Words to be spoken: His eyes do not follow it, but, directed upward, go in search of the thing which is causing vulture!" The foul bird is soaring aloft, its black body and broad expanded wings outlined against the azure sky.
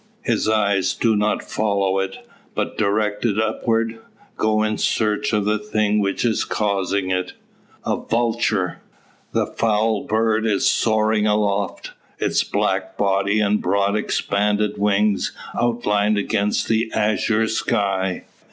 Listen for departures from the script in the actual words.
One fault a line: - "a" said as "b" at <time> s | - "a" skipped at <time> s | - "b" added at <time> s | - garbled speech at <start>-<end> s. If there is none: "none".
- "it A" added at 7.1 s